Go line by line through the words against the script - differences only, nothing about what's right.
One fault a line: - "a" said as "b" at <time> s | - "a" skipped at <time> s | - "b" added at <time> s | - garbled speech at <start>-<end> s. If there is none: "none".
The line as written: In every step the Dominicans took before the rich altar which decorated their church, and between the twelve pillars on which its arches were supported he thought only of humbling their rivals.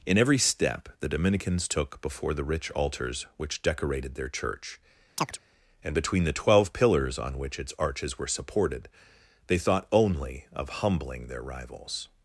- "altar" said as "altars" at 2.7 s
- "he" said as "they" at 9.5 s